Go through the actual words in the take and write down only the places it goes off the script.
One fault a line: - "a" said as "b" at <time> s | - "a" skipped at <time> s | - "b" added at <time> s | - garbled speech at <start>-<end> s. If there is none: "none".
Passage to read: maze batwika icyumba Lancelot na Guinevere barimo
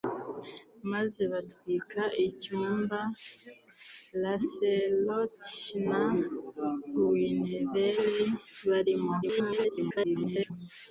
- garbled speech at 9.2-10.5 s